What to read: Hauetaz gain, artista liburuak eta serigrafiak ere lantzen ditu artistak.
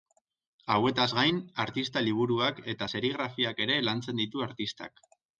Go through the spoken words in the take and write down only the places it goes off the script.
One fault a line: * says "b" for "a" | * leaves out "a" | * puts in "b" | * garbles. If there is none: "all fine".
all fine